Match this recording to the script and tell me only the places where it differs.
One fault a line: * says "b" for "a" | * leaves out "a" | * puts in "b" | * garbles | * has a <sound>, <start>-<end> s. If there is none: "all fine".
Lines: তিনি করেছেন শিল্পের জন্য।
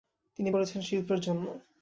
all fine